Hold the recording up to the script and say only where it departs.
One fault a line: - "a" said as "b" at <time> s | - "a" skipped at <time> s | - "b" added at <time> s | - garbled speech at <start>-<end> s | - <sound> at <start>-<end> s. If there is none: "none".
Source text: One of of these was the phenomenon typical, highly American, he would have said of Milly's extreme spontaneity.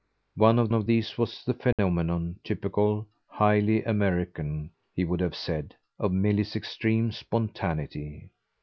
- dropout at 1.7-1.8 s